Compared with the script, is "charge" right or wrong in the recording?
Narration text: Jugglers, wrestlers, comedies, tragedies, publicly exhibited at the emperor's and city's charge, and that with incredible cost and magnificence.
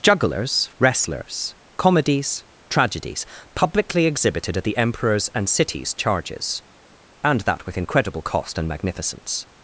wrong